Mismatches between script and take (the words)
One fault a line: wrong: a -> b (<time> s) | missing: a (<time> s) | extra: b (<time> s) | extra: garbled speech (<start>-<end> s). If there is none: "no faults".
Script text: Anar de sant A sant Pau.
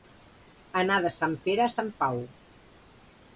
extra: Pere (1.4 s)